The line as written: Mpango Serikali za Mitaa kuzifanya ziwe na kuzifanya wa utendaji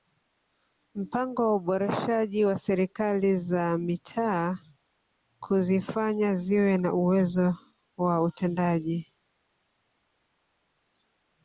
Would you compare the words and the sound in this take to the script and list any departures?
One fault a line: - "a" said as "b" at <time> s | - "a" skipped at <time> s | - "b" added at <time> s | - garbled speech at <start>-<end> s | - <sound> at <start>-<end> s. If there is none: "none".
- "wa uboreshaji wa" added at 1.4 s
- "kuzifanya" said as "uwezo" at 6.9 s